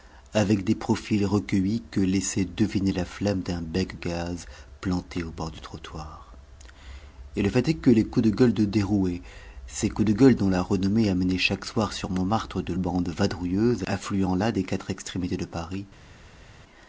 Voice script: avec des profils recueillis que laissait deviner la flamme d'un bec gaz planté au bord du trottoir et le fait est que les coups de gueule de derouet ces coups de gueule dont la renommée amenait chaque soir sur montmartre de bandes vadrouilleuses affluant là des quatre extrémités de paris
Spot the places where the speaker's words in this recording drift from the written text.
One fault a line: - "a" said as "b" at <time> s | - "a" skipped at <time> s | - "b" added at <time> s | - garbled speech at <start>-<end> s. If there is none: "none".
none